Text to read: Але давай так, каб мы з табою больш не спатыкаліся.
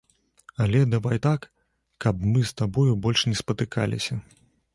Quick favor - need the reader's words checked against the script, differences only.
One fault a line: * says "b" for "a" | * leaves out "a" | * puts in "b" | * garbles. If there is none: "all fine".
all fine